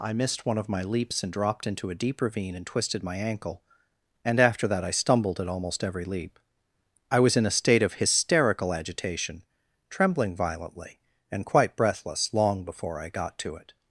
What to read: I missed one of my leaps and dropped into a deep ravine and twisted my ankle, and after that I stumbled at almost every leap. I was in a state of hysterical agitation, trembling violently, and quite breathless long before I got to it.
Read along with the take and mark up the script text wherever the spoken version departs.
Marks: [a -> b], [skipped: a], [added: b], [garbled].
I missed one of my leaps and dropped into a deep ravine and twisted my ankle, and after that I stumbled at almost every leap. I was in a state of hysterical agitation, trembling violently, and quite breathless long before I got to it.